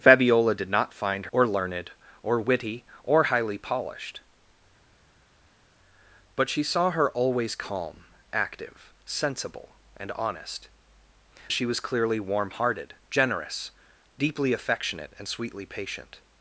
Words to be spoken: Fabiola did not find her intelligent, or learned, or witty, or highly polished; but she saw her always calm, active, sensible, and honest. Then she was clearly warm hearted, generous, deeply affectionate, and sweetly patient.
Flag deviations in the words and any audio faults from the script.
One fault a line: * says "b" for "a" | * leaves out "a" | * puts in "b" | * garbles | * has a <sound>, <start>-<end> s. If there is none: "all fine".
* leaves out "her intelligent"
* leaves out "Then"